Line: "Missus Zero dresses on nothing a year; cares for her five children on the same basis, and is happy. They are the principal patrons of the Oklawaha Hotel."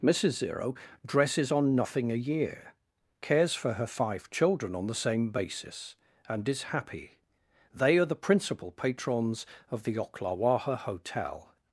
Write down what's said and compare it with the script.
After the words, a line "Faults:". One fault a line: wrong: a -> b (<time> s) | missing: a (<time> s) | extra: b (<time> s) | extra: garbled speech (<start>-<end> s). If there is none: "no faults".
"Missus Zero dresses on nothing a year; cares for her five children on the same basis, and is happy. They are the principal patrons of the Oklawaha Hotel."
Faults:
no faults